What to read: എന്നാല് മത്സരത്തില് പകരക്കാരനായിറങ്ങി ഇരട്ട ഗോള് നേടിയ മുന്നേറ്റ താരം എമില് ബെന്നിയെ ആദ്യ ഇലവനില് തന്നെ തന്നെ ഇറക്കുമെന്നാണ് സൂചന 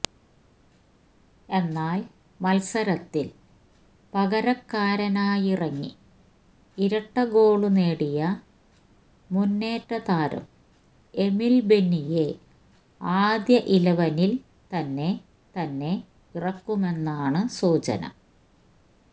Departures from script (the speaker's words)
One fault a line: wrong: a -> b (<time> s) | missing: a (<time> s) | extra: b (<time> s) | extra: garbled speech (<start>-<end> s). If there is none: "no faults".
no faults